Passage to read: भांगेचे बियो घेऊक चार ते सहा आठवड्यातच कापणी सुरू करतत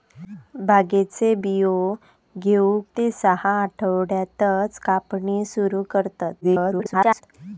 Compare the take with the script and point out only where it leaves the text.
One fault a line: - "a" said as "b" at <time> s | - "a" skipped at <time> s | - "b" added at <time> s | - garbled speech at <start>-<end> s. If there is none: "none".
- "चार" skipped at 2.8 s
- garbled speech at 6.4-7.2 s